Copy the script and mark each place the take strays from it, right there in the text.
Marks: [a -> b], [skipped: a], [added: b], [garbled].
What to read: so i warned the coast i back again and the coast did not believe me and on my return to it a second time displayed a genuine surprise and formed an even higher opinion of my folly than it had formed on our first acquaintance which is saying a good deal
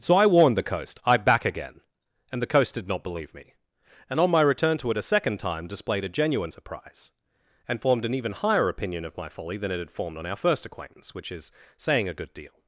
so i warned the coast i back again and the coast did not believe me and on my return to it a second time displayed a genuine surprise and formed an even higher opinion of my folly than it had formed on our first acquaintance which is saying a good deal